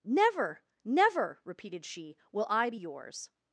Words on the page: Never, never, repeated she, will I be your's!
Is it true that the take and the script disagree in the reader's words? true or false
false